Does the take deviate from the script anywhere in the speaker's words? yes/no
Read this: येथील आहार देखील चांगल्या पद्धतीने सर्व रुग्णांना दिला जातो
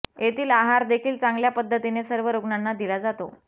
no